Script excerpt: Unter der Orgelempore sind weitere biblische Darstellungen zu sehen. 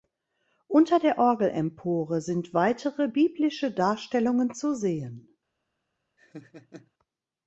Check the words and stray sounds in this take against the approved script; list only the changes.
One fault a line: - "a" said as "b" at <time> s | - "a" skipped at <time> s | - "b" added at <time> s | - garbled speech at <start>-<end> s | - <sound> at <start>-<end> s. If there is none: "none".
- laugh at 6.2-6.9 s